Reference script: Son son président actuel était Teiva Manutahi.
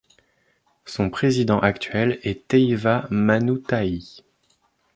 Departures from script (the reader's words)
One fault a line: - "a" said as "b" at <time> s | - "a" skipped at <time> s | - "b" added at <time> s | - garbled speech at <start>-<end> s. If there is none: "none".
- "son" skipped at 1.1 s
- "était" said as "est" at 2.2 s